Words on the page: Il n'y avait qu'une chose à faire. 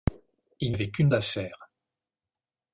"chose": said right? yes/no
no